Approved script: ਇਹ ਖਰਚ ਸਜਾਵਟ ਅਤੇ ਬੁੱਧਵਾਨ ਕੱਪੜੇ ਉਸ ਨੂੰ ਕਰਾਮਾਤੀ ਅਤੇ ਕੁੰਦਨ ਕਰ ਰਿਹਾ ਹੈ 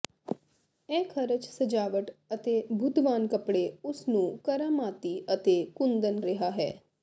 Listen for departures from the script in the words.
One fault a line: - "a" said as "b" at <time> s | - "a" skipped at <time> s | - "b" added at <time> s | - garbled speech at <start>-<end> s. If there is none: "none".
- "ਕਰ" skipped at 6.2 s